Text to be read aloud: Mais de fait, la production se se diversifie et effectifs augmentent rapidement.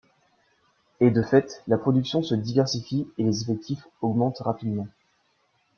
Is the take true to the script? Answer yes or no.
no